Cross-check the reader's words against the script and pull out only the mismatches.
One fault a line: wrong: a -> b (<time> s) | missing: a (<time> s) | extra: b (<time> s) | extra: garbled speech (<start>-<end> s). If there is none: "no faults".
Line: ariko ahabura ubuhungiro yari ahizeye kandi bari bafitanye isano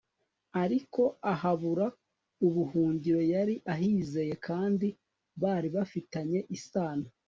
no faults